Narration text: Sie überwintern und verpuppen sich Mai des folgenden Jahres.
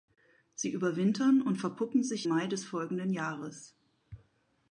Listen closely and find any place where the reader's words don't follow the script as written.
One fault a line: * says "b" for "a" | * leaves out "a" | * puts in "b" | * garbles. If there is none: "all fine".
all fine